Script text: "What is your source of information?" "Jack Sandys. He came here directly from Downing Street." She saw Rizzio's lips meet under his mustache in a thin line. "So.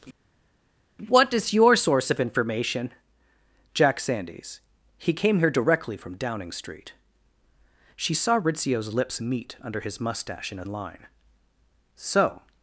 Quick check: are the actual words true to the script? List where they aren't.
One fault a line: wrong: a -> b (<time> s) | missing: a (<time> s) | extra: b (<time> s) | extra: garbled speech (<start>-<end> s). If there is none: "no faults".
missing: thin (10.6 s)